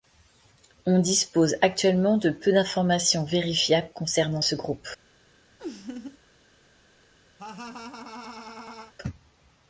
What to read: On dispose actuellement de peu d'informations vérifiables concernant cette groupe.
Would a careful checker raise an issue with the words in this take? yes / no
yes